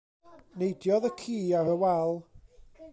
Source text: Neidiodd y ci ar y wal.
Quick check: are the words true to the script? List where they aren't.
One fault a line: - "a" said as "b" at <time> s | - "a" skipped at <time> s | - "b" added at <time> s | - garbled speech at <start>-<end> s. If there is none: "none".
none